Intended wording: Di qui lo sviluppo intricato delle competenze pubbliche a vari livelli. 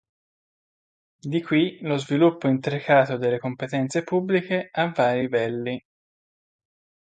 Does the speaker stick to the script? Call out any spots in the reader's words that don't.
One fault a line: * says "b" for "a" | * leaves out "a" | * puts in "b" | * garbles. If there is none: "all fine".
all fine